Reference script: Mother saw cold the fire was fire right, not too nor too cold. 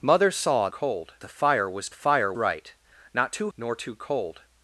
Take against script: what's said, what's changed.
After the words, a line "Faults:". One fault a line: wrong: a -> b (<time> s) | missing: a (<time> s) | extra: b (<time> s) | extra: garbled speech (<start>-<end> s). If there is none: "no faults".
Mother saw cold the fire was fire right, not too nor too cold.
Faults:
no faults